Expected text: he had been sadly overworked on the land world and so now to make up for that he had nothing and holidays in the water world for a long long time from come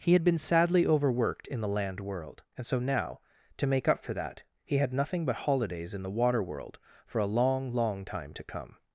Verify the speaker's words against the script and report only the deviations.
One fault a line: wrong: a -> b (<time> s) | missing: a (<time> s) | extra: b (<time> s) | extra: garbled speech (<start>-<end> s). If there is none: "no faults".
wrong: on -> in (1.4 s)
wrong: and -> but (5.2 s)
wrong: from -> to (8.3 s)